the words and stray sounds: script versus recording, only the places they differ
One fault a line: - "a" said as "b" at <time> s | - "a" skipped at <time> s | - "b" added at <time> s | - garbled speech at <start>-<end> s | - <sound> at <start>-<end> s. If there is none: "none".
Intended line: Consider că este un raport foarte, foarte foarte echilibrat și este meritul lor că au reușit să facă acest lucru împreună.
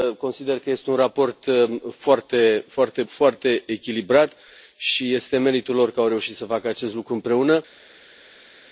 none